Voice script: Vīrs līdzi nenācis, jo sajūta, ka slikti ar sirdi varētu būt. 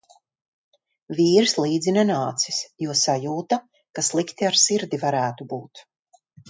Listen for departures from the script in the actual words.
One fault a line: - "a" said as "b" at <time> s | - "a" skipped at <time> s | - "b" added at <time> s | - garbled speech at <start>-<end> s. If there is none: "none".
none